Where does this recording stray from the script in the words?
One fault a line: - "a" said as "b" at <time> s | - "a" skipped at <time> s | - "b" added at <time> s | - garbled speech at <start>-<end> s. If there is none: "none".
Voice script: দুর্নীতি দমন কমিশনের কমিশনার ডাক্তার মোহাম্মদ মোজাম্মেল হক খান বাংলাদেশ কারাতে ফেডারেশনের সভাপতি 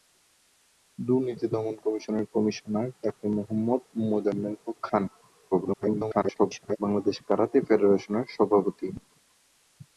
- garbled speech at 5.5-6.8 s